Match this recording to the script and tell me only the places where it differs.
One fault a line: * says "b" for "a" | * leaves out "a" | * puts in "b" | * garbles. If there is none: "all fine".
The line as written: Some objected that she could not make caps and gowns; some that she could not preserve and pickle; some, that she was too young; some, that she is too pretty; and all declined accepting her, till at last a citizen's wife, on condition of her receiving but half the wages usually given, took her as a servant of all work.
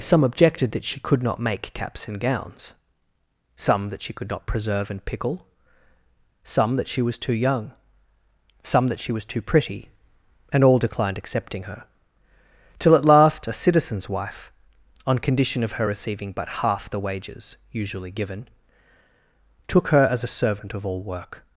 * says "was" for "is"